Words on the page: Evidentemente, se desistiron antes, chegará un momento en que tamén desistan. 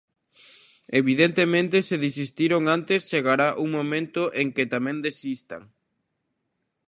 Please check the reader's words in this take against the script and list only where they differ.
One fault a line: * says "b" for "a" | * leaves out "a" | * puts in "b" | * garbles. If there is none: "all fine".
all fine